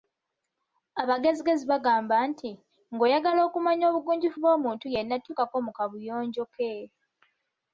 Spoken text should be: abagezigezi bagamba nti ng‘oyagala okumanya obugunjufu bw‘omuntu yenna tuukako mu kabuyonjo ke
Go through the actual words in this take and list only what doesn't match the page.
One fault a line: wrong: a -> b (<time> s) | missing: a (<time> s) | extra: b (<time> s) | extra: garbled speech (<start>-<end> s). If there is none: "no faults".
no faults